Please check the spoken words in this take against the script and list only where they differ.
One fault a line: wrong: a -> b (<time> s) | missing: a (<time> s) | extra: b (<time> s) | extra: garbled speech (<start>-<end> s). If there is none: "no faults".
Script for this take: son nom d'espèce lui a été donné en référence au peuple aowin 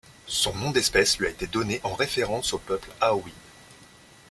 no faults